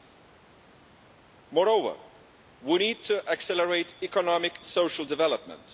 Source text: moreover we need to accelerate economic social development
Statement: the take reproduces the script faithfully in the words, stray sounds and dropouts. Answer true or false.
true